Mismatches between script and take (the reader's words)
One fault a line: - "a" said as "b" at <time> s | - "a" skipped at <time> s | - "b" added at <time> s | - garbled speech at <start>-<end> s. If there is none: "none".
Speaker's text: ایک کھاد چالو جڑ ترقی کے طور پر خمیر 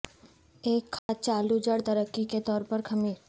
none